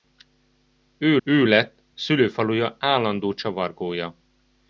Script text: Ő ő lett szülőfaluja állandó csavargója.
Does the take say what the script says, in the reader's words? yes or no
yes